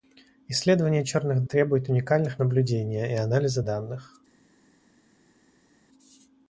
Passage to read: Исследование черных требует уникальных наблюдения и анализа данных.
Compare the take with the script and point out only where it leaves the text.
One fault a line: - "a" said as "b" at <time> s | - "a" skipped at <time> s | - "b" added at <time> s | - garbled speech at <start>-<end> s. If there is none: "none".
none